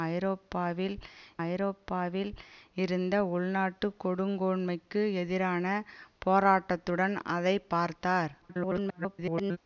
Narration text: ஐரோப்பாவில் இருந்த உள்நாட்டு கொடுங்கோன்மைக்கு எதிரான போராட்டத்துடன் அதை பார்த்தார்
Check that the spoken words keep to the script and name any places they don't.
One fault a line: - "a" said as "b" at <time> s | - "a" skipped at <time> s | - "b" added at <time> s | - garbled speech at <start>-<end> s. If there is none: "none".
- "ஐரோப்பாவில்" added at 1.4 s
- garbled speech at 8.4-9.6 s